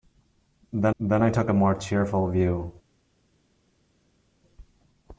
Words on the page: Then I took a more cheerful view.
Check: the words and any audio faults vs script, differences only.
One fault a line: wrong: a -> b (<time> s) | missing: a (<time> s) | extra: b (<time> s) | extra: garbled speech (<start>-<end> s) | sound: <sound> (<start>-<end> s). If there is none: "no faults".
extra: then (1.0 s)